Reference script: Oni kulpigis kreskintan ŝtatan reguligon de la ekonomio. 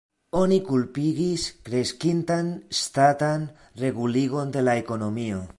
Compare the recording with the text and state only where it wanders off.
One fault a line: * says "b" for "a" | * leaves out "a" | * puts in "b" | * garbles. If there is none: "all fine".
all fine